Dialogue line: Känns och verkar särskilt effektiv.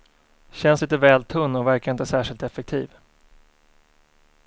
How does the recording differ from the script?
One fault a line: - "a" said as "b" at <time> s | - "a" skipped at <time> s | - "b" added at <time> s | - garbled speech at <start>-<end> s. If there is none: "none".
- "lite väl tunn" added at 0.8 s
- "inte" added at 1.9 s